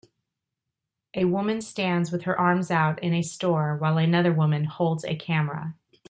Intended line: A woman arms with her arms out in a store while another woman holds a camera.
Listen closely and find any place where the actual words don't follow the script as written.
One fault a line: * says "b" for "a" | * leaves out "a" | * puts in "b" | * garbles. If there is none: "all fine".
* says "stands" for "arms"